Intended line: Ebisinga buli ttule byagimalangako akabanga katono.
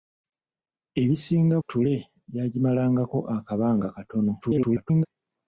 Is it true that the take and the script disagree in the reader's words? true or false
true